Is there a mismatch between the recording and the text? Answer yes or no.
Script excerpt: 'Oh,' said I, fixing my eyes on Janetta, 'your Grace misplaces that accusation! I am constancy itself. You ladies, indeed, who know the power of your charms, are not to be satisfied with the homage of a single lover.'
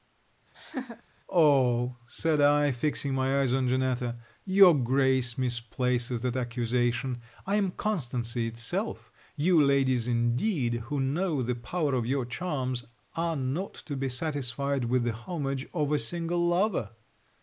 no